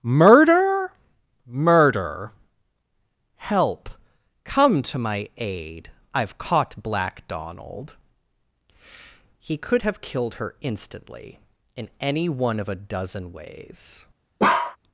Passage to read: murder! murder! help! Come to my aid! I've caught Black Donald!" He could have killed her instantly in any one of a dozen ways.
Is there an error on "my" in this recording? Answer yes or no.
no